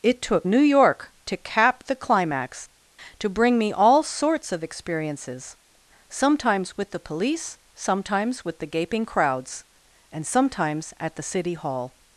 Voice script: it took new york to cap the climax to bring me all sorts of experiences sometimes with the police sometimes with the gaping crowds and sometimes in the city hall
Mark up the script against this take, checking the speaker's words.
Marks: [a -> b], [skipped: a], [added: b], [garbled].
it took new york to cap the climax to bring me all sorts of experiences sometimes with the police sometimes with the gaping crowds and sometimes [in -> at] the city hall